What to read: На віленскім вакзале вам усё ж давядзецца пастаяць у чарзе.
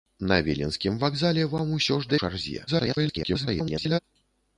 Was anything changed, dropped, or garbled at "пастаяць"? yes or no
yes